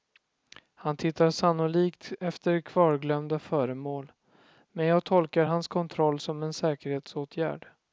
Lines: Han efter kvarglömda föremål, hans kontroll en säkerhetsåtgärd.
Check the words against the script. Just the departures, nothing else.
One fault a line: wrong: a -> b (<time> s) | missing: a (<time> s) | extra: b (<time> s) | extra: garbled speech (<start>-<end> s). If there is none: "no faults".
extra: tittar sannolikt (1.0 s)
extra: men jag tolkar (4.7 s)
extra: som (6.2 s)